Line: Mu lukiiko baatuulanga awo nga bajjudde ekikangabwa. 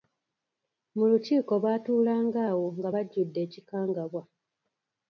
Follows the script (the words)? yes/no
yes